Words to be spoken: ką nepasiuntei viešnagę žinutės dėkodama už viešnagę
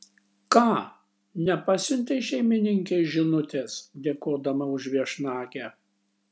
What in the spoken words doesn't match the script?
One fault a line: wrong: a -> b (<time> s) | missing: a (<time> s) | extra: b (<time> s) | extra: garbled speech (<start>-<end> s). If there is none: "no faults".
wrong: viešnagę -> šeimininkei (2.3 s)